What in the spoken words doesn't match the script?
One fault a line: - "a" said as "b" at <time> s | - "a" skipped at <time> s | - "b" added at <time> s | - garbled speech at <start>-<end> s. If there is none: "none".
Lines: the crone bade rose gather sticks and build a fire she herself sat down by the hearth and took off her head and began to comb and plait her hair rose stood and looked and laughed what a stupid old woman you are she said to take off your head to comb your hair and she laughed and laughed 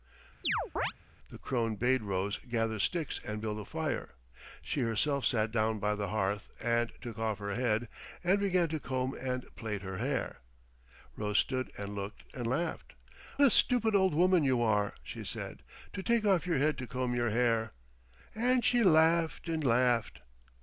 - "what" skipped at 12.9 s